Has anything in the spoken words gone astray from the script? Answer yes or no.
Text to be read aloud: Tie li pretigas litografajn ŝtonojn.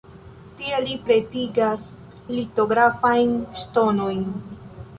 no